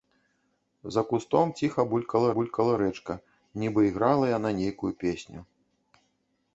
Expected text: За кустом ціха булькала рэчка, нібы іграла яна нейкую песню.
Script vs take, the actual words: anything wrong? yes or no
yes